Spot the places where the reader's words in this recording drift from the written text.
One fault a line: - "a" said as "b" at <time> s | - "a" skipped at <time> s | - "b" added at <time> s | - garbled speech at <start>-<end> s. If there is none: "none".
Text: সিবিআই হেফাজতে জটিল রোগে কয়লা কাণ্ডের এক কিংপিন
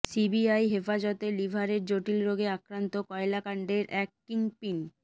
- "লিভারের" added at 1.4 s
- "আক্রান্ত" added at 2.6 s